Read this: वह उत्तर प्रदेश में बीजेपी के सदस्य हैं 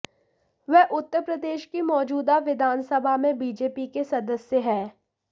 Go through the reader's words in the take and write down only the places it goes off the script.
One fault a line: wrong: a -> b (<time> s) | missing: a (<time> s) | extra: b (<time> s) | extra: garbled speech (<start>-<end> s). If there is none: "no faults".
extra: की मौजूदा विधानसभा (1.6 s)